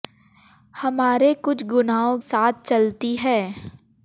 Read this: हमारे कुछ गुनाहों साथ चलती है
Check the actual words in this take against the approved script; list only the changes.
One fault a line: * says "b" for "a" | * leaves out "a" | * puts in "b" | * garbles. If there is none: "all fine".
all fine